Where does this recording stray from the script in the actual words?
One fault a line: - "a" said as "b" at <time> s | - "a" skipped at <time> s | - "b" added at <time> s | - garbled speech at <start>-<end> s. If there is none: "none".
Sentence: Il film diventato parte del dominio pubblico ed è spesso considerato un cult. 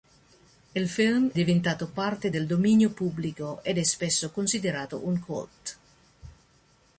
none